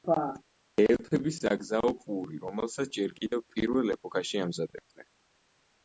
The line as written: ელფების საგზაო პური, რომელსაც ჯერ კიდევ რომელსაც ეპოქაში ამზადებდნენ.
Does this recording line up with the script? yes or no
no